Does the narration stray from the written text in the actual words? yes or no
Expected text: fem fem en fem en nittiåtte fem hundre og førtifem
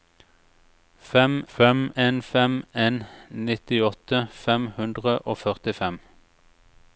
no